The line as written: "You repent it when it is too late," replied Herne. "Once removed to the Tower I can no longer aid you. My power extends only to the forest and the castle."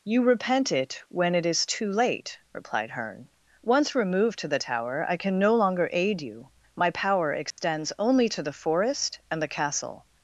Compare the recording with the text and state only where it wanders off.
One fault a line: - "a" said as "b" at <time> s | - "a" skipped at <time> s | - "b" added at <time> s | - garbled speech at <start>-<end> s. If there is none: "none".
none